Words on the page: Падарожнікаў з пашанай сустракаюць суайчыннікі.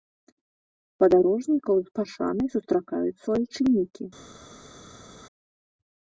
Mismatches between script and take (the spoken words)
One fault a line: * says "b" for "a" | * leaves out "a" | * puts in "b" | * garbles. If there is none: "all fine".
all fine